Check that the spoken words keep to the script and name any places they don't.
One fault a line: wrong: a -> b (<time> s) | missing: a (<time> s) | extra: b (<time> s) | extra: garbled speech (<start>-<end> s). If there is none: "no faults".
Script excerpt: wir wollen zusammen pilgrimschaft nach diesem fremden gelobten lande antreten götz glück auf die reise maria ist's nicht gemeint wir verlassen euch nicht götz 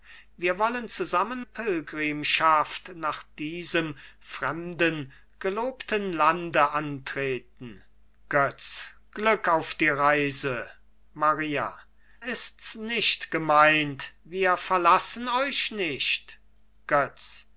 no faults